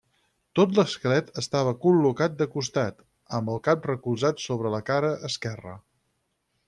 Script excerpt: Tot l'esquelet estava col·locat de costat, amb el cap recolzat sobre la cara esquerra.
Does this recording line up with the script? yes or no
yes